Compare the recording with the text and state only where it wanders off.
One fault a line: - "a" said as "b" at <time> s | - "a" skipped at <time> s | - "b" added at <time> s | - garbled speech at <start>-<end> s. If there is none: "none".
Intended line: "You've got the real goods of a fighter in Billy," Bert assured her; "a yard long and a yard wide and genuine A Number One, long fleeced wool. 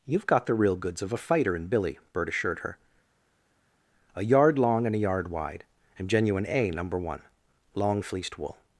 none